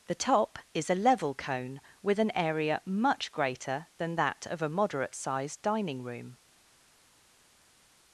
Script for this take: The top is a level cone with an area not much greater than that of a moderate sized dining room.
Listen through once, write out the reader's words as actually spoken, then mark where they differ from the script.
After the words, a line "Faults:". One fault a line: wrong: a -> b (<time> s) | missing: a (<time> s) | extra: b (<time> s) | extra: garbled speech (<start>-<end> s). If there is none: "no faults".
The top is a level cone with an area much greater than that of a moderate sized dining room.
Faults:
missing: not (2.8 s)